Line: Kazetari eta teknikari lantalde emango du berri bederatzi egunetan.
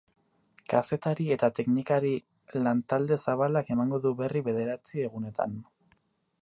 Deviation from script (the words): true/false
true